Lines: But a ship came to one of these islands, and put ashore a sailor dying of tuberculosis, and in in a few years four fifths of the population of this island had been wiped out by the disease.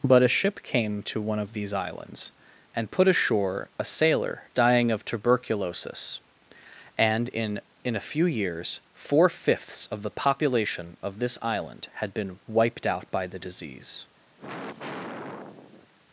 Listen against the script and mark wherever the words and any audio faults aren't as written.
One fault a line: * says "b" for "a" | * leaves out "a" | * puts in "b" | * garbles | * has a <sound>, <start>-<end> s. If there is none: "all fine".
* has a sigh, 14.4-15.9 s